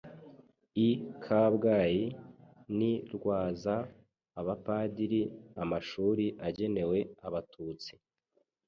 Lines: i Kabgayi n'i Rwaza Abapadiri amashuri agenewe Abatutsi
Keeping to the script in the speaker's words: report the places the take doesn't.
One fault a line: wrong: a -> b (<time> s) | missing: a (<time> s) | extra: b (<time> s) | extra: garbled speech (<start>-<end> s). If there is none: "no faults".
no faults